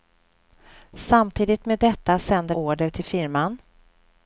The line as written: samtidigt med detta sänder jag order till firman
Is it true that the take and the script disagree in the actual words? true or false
true